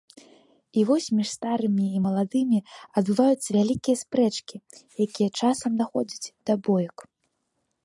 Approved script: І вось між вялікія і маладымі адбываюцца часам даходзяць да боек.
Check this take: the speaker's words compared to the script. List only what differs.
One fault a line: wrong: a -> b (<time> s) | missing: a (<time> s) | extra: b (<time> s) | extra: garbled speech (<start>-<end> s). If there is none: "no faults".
wrong: вялікія -> старымі (1.4 s)
extra: вялікія спрэчкі якія (3.6 s)